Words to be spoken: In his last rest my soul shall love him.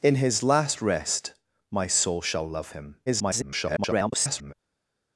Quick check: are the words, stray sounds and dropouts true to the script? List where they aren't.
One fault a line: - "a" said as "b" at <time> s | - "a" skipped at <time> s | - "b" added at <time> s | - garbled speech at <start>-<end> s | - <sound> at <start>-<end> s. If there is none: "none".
- garbled speech at 3.1-4.5 s